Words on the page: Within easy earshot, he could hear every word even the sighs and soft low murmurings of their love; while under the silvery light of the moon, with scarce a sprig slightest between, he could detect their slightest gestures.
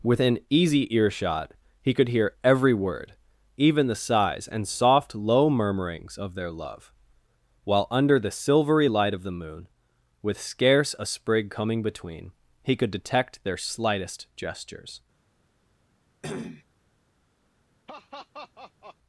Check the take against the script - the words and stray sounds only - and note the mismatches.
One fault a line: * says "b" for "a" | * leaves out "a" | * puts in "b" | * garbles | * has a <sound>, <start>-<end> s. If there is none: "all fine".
* says "coming" for "slightest"
* has a cough, 16.2-16.6 s
* has a laugh, 17.9-19.0 s